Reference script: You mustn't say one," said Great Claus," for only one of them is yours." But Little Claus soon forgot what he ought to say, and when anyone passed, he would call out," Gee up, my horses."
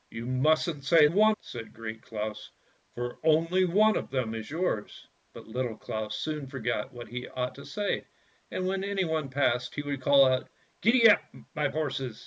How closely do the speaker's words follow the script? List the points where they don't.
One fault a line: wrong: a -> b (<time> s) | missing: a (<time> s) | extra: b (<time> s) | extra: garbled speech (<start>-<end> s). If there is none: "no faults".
no faults